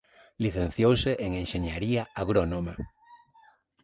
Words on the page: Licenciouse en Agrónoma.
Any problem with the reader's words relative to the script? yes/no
yes